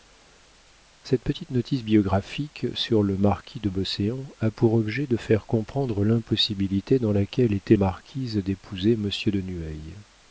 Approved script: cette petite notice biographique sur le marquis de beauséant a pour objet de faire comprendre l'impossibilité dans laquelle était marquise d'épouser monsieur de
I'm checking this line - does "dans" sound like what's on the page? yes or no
yes